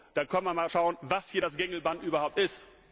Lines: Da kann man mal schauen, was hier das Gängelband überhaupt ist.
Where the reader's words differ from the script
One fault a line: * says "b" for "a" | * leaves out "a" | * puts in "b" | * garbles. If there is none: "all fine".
all fine